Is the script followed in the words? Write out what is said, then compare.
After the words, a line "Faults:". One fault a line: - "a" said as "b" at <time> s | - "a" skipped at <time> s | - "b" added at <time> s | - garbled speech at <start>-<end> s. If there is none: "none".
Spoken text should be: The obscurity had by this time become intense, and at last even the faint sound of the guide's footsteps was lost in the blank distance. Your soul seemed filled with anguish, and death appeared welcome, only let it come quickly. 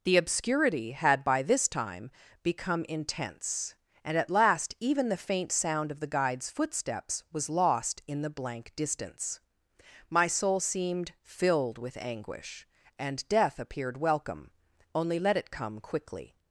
The obscurity had by this time become intense, and at last even the faint sound of the guide's footsteps was lost in the blank distance. My soul seemed filled with anguish, and death appeared welcome, only let it come quickly.
Faults:
- "Your" said as "My" at 10.1 s